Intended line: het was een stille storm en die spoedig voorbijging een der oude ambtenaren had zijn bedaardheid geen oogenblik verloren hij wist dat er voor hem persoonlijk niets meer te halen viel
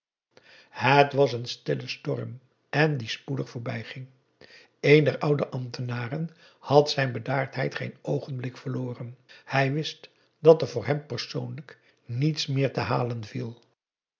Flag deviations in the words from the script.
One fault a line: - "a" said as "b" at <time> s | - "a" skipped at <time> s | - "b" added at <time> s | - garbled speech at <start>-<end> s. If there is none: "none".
none